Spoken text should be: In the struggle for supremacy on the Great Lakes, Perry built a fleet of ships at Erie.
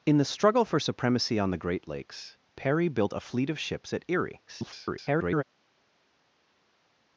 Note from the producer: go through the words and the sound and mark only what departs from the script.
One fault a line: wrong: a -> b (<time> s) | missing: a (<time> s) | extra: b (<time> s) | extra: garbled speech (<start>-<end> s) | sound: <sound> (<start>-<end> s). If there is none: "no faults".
extra: garbled speech (4.5-5.4 s)